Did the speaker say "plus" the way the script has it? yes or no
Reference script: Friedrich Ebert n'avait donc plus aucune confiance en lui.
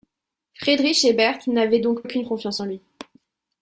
no